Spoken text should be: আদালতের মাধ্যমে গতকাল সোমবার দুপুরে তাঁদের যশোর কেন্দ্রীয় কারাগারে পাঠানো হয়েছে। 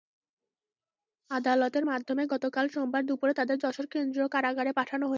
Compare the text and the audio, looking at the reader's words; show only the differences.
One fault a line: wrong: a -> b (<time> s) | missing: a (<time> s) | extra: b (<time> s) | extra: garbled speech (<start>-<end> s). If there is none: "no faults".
no faults